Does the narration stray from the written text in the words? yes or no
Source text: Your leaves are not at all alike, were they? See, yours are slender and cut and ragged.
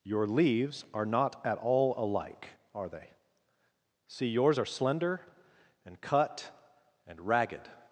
yes